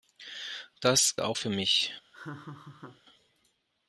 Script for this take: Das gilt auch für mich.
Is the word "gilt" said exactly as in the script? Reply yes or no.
no